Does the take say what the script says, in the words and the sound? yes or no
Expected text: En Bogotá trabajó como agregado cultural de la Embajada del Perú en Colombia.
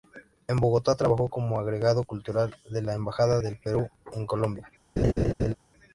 no